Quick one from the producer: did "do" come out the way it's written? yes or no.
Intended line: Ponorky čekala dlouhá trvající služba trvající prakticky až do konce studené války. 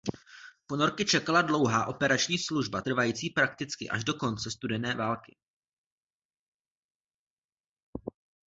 yes